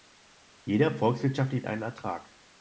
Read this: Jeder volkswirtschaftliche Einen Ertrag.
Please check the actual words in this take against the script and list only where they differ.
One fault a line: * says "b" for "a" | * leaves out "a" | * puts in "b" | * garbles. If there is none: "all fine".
all fine